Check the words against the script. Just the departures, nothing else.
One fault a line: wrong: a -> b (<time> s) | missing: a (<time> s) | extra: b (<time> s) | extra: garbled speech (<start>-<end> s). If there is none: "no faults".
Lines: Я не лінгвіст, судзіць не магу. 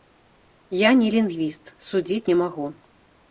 no faults